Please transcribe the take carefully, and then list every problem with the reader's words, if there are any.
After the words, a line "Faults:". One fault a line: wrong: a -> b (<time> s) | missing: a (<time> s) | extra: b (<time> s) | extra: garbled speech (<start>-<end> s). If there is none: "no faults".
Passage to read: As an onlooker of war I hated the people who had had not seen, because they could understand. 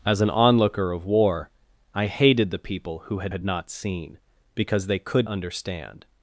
As an onlooker of war I hated the people who had had not seen, because they could understand.
Faults:
no faults